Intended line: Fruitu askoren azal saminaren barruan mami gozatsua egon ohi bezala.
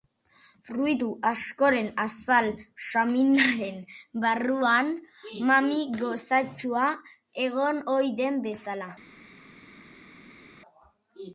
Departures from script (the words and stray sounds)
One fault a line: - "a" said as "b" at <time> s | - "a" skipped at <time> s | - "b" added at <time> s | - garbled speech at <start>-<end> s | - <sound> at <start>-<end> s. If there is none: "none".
- "den" added at 8.2 s